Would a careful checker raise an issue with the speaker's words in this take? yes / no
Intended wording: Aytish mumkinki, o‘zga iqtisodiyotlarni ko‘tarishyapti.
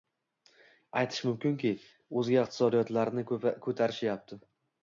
no